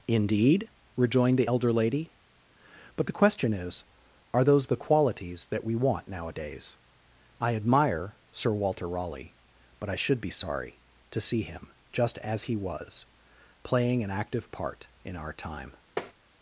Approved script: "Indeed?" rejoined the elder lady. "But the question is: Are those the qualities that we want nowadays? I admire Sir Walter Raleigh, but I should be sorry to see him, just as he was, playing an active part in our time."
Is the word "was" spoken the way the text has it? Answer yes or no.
yes